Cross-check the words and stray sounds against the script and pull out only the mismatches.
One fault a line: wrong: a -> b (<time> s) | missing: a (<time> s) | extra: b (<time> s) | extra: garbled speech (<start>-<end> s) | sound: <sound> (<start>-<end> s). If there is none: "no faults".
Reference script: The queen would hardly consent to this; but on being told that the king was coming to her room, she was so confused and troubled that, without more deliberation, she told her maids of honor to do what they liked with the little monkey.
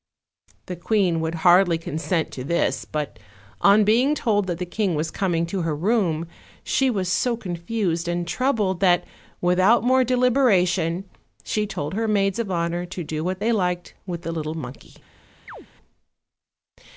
sound: chirp (15.5-15.7 s)